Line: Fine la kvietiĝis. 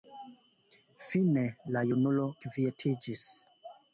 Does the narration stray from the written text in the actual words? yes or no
yes